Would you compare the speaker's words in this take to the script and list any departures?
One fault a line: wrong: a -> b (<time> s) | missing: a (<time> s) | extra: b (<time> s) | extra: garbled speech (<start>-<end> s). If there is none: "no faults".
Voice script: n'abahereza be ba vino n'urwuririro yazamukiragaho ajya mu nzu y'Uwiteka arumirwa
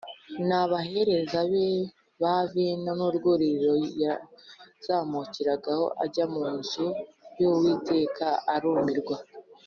no faults